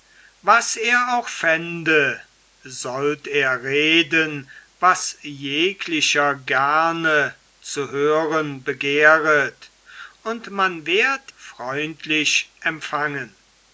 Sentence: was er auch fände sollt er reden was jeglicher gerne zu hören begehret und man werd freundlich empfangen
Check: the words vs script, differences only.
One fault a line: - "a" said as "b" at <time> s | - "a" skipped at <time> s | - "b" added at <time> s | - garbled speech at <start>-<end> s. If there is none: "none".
none